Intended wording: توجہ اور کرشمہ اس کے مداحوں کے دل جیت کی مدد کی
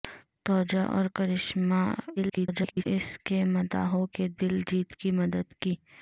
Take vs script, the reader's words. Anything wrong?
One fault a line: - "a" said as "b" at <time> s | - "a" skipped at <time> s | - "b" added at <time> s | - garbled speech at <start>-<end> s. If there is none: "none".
- garbled speech at 2.2-2.8 s